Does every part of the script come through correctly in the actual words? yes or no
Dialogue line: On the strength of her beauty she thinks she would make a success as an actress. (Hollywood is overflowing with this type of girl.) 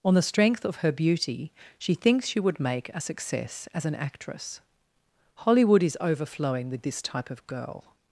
yes